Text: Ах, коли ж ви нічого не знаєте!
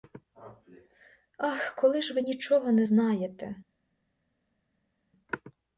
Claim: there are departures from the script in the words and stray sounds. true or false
false